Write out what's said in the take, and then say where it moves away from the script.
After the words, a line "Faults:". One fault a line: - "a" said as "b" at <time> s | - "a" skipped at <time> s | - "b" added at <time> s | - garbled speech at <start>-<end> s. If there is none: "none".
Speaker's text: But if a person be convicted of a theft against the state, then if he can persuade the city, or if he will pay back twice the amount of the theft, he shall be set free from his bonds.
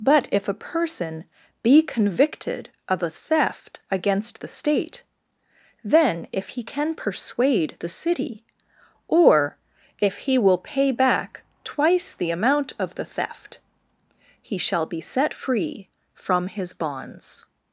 But if a person be convicted of a theft against the state, then if he can persuade the city, or if he will pay back twice the amount of the theft, he shall be set free from his bonds.
Faults:
none